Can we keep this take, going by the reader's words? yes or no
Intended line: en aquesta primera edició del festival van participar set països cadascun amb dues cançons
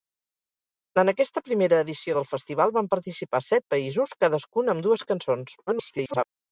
no